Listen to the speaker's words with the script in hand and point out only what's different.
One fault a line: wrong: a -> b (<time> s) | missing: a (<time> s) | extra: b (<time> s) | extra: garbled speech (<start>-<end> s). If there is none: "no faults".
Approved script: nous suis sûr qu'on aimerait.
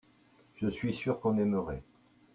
wrong: nous -> je (0.6 s)